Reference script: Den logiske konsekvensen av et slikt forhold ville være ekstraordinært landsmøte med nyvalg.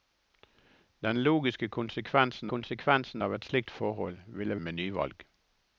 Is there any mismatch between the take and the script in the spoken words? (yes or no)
yes